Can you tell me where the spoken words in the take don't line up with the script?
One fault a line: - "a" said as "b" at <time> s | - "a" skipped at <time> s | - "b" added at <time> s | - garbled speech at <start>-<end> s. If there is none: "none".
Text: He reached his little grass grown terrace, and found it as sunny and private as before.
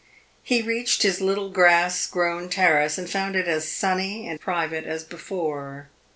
none